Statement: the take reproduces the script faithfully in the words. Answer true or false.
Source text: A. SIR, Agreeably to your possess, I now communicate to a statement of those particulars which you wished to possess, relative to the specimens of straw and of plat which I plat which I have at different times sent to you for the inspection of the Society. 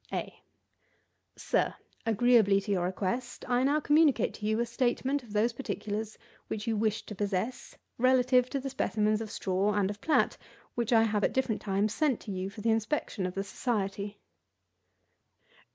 false